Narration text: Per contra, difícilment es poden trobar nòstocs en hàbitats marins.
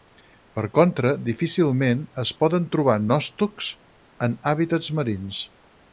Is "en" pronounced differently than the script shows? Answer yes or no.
no